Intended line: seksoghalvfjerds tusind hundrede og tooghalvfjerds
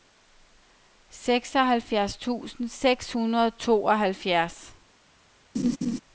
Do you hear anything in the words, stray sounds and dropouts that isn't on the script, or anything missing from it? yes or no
yes